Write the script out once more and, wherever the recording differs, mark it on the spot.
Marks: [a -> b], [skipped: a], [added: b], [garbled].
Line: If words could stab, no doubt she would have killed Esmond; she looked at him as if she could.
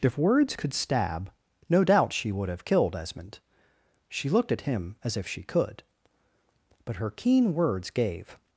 If words could stab, no doubt she would have killed Esmond; she looked at him as if she could. [added: But her keen words gave]